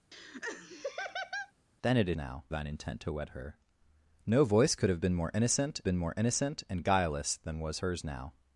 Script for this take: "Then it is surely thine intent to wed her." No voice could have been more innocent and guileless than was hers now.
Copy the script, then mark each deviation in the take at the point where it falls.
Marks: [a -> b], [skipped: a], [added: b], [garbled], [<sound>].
[laugh] "Then it is [surely -> now] thine intent to wed her." No voice could have been more innocent [added: been more innocent] and guileless than was hers now.